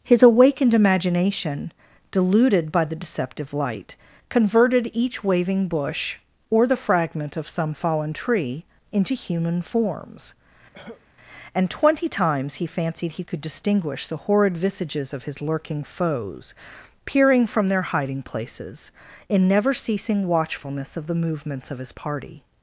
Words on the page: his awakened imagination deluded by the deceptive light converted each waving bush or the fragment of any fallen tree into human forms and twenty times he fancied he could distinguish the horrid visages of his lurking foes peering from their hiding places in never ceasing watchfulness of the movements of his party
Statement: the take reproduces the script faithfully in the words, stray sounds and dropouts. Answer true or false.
false